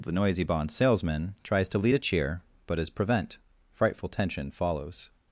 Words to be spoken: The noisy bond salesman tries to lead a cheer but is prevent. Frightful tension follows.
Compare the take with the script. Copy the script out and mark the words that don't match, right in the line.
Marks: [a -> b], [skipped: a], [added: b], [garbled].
The noisy bond salesman tries to lead a cheer but is prevent. Frightful tension follows.